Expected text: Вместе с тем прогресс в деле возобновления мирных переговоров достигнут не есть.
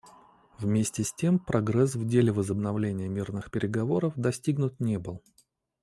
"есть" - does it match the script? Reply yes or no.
no